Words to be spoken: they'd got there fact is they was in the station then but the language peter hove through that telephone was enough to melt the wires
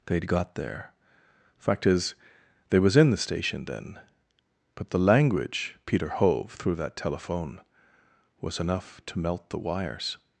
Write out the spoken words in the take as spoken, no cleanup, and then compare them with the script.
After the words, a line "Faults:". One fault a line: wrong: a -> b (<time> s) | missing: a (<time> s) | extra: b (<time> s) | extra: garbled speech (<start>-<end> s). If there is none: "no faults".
they'd got there fact is they was in the station then but the language peter hove through that telephone was enough to melt the wires
Faults:
no faults